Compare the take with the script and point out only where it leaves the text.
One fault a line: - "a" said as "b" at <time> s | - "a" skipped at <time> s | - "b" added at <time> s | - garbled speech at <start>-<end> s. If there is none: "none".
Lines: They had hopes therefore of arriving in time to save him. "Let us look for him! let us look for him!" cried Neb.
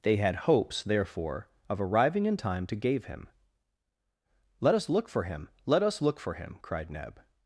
- "save" said as "gave" at 2.8 s